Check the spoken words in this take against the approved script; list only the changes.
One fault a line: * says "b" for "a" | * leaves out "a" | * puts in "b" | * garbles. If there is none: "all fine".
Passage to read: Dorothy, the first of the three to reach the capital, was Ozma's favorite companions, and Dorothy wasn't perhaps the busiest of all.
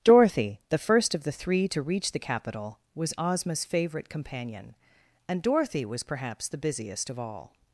* says "companion" for "companions"
* says "was" for "wasn't"